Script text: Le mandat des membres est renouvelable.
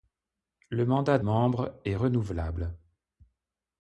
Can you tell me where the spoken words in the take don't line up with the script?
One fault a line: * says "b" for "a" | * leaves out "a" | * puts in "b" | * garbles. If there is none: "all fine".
* leaves out "des"